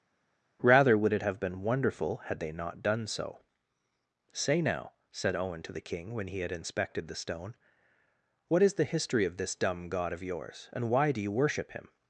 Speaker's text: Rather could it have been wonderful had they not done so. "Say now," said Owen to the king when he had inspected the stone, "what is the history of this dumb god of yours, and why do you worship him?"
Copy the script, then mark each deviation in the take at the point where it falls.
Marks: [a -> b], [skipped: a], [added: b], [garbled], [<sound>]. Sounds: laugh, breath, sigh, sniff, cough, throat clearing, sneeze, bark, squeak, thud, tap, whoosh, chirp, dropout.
Rather [could -> would] it have been wonderful had they not done so. "Say now," said Owen to the king when he had inspected the stone, "what is the history of this dumb god of yours, and why do you worship him?"